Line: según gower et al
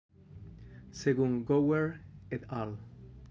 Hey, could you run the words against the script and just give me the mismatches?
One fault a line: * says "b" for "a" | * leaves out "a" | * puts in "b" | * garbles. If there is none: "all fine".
all fine